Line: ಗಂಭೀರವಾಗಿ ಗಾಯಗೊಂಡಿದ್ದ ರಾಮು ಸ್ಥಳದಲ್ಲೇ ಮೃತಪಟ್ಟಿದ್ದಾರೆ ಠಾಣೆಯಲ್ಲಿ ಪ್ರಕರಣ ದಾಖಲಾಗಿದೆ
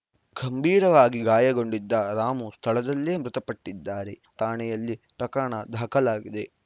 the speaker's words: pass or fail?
pass